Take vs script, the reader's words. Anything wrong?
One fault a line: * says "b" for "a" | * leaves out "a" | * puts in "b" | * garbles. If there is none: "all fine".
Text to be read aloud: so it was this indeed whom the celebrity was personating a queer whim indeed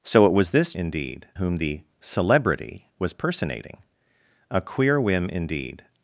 all fine